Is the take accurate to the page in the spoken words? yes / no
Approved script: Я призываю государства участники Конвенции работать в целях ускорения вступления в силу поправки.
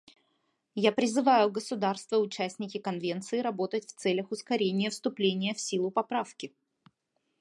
yes